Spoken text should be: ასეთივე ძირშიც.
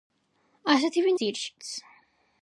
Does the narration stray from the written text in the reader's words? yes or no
no